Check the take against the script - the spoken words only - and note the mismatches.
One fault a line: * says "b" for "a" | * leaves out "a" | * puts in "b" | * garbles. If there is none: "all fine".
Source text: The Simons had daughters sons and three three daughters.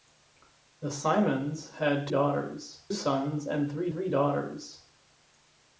all fine